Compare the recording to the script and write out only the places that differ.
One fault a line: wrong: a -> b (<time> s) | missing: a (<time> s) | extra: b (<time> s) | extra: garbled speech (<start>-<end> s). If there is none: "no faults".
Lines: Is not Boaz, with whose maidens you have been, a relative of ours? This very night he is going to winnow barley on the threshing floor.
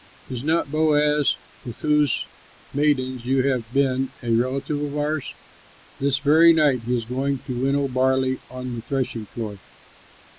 no faults